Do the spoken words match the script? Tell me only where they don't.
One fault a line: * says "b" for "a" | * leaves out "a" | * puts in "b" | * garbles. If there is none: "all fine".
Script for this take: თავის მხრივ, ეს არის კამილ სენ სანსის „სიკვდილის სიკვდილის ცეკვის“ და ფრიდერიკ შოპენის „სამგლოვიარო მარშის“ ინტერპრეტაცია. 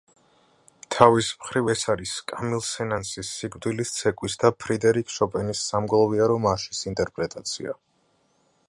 * leaves out "სიკვდილის"